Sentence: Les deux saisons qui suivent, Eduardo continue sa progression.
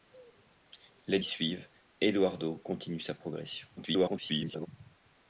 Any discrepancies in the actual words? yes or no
yes